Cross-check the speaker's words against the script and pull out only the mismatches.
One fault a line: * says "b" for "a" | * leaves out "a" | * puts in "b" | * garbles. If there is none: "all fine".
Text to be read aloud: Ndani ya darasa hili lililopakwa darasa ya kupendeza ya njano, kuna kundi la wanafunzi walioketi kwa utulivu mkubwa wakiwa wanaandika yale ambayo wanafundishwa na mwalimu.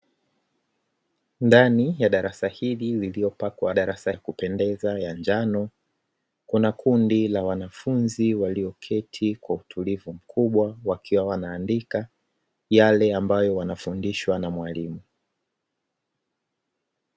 all fine